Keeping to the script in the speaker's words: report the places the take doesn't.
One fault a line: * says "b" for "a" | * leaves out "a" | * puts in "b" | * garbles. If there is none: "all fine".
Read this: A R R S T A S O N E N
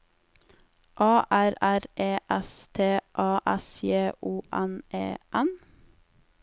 * puts in "E"
* puts in "J"